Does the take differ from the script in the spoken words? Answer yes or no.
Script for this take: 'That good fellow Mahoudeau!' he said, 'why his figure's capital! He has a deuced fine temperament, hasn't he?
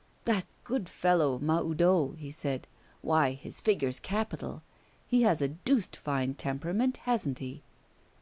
no